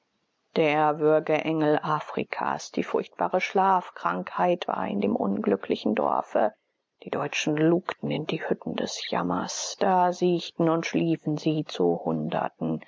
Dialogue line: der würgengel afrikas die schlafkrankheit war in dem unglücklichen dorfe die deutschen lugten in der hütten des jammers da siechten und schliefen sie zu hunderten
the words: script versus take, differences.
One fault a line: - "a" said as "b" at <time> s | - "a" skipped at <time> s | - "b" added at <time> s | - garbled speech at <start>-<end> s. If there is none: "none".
- "furchtbare" added at 2.8 s
- "der" said as "die" at 8.2 s